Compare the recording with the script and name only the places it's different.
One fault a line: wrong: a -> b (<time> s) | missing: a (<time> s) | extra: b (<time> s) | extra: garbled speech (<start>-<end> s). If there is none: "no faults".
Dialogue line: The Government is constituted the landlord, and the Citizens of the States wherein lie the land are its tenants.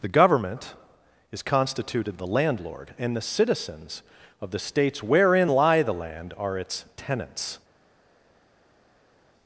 no faults